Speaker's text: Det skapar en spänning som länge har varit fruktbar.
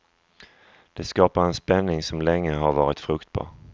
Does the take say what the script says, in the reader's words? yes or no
yes